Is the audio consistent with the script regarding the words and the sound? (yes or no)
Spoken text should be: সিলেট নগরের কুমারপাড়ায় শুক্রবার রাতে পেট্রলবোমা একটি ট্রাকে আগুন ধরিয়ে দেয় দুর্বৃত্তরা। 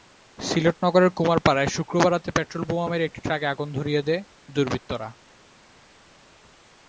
no